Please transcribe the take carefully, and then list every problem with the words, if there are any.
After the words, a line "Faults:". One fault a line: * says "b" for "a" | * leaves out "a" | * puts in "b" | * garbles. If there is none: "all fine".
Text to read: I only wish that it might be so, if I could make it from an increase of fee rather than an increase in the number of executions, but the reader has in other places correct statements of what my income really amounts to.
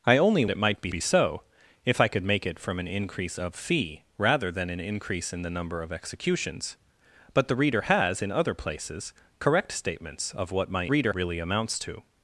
I only it might be be so, if I could make it from an increase of fee rather than an increase in the number of executions, but the reader has in other places correct statements of what my reader really amounts to.
Faults:
* leaves out "wish that"
* puts in "be"
* says "reader" for "income"